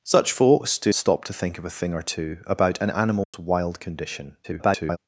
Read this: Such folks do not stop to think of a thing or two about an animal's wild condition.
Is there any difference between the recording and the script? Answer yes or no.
yes